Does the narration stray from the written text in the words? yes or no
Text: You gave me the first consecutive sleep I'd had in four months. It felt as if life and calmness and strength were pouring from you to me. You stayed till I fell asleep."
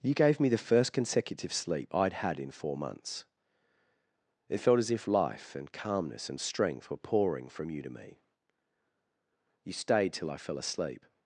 no